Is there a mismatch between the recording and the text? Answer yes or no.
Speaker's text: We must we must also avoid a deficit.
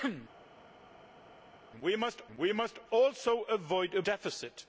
no